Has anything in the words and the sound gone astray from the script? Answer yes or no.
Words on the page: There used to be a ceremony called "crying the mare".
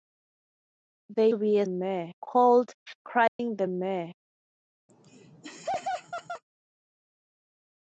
yes